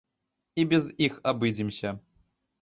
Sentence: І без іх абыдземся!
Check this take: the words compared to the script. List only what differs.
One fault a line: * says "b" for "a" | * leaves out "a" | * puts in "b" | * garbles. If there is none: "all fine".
all fine